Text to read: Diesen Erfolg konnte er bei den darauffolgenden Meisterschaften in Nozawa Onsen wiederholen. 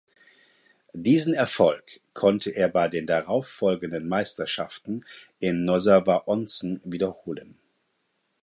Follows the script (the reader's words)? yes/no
yes